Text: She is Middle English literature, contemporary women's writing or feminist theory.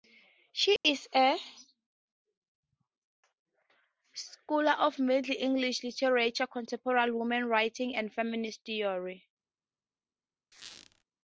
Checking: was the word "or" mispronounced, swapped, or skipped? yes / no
yes